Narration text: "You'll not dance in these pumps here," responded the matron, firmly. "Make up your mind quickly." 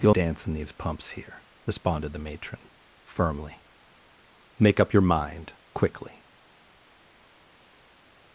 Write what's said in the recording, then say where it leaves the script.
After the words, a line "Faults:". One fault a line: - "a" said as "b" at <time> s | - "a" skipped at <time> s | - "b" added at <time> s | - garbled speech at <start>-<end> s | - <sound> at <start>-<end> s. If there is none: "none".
"You'll dance in these pumps here," responded the matron, firmly. "Make up your mind quickly."
Faults:
- "not" skipped at 0.1 s